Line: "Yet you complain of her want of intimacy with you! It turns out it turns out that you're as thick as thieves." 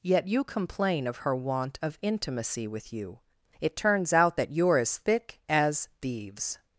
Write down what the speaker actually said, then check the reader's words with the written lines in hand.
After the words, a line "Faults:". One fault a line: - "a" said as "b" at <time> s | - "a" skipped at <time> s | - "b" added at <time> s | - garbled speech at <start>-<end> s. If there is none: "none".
"Yet you complain of her want of intimacy with you! It turns out that you're as thick as thieves."
Faults:
- "it turns out" skipped at 4.4 s